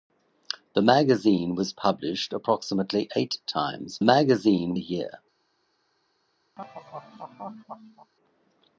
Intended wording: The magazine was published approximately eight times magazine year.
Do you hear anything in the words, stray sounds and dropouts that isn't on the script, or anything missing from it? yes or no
yes